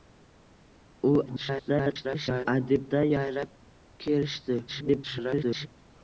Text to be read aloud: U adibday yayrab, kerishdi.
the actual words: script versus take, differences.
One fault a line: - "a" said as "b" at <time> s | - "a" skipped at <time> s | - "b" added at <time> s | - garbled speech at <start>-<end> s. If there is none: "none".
- garbled speech at 1.3-2.5 s
- garbled speech at 4.7-5.7 s